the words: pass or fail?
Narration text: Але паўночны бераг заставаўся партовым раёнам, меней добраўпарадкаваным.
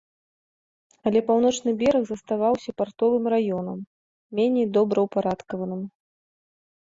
pass